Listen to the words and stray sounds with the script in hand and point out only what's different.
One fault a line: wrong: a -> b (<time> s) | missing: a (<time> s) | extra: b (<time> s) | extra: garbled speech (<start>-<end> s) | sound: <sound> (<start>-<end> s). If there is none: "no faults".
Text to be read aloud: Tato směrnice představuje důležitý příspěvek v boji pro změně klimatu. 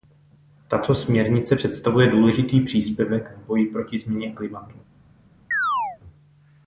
wrong: pro -> proti (3.7 s)
sound: chirp (5.5-6.0 s)